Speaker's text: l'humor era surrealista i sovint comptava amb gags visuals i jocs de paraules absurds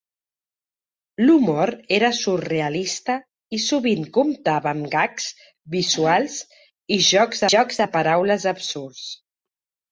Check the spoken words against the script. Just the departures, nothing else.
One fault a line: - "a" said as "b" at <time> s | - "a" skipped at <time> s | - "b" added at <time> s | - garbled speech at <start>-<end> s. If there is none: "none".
- "jocs" added at 7.5 s